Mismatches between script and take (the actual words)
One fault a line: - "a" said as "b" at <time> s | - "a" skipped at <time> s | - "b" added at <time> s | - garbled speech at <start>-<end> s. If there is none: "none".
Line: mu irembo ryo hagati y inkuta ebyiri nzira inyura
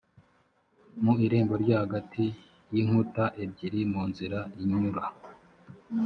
- "mu" added at 3.9 s